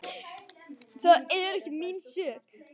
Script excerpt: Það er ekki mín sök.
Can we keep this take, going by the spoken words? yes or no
yes